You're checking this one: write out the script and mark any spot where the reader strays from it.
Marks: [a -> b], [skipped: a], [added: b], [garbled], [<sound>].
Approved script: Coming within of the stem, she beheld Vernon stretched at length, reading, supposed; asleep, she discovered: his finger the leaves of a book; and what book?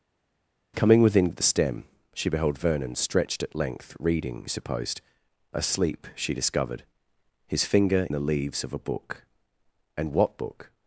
Coming within of the stem, she beheld Vernon stretched at length, reading, supposed; asleep, she discovered: his finger the leaves of a book; and what book?